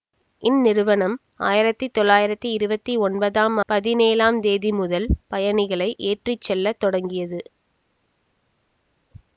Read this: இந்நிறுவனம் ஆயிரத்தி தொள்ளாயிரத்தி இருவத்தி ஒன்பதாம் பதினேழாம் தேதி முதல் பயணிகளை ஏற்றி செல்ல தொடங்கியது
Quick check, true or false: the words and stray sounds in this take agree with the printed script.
true